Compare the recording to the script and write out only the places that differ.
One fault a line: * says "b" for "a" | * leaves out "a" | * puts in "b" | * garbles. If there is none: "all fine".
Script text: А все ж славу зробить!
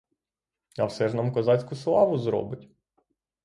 * puts in "нам козацьку"